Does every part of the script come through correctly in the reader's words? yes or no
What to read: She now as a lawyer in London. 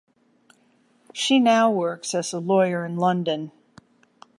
no